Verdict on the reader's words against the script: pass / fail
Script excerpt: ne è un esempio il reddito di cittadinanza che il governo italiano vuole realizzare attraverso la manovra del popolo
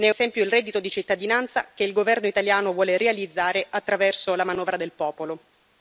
fail